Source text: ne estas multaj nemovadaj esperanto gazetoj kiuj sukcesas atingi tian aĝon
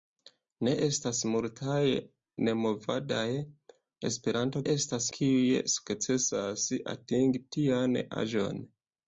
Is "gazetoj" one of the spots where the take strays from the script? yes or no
yes